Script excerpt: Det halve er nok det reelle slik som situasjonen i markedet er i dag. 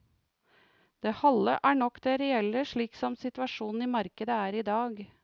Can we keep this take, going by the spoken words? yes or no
yes